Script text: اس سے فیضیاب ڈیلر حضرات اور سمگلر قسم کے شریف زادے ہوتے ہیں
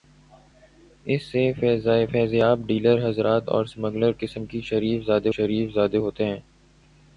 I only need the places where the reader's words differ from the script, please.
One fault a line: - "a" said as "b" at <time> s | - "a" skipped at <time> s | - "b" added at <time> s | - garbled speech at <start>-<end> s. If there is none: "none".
- "شریف زادے" added at 5.3 s